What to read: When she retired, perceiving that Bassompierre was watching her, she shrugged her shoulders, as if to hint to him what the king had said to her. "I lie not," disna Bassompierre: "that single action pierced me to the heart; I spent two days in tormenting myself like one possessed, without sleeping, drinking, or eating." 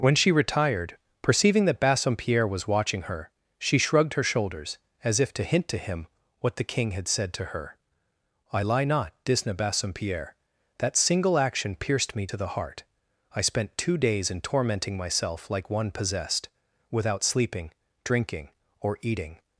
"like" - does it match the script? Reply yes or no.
yes